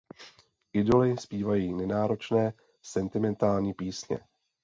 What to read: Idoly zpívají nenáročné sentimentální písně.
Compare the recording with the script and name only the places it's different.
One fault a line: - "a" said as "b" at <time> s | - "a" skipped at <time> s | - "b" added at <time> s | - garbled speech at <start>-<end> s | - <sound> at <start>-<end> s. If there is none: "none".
none